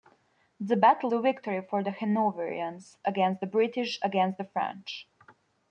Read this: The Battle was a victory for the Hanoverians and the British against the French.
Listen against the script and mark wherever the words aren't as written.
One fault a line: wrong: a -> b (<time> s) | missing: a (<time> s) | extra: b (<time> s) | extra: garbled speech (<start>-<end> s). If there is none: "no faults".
missing: was (1.1 s)
wrong: and -> against (3.1 s)